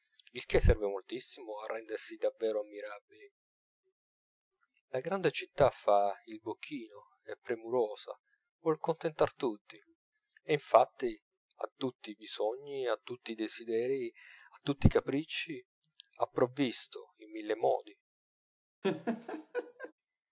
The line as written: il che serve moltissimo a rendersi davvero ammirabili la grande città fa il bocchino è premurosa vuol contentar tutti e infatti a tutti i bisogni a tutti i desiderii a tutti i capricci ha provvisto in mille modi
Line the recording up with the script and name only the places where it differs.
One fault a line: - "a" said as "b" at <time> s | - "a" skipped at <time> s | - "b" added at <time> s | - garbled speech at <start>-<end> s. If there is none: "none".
none